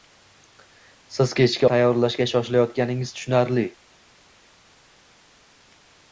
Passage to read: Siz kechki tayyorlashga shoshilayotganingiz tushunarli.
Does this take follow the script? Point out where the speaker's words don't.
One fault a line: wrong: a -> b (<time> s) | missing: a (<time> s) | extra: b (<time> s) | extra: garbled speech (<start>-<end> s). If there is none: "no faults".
no faults